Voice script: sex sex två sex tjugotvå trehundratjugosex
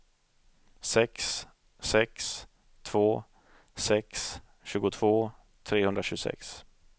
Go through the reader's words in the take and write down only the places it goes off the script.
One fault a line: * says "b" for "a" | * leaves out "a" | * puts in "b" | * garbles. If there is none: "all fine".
all fine